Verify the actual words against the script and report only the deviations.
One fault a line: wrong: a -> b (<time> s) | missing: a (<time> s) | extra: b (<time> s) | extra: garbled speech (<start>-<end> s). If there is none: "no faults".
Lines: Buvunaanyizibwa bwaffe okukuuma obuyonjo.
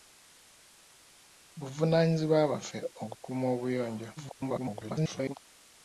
extra: garbled speech (4.2-5.4 s)